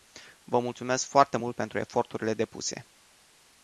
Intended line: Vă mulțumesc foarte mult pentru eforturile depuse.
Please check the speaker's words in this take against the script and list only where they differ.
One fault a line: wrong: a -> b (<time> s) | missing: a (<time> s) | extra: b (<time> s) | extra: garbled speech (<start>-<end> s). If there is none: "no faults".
no faults